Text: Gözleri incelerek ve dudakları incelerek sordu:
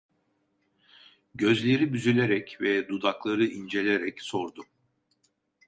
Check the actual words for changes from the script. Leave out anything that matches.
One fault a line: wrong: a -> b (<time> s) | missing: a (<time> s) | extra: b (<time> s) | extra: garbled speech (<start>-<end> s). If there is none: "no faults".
wrong: incelerek -> büzülerek (1.9 s)